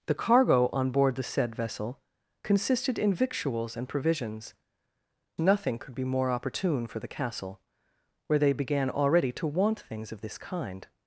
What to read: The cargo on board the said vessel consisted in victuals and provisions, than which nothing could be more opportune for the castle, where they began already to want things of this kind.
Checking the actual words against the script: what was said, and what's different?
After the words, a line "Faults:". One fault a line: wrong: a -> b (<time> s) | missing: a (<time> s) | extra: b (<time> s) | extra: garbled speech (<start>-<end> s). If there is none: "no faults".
The cargo on board the said vessel consisted in victuals and provisions, nothing could be more opportune for the castle, where they began already to want things of this kind.
Faults:
missing: than which (4.5 s)